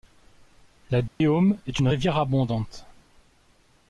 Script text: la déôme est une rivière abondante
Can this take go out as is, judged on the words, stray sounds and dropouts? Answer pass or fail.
fail